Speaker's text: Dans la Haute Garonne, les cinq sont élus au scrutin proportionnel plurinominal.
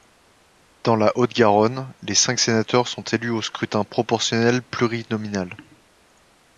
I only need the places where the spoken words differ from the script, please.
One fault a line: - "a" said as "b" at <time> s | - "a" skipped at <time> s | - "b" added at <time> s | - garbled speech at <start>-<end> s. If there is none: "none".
- "sénateurs" added at 2.4 s